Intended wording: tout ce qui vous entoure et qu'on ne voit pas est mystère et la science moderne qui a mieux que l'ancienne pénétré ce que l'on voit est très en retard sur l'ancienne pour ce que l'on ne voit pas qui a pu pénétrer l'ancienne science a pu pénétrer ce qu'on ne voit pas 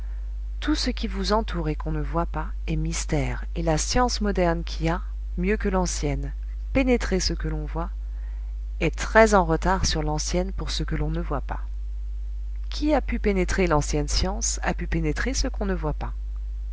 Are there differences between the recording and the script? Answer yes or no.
no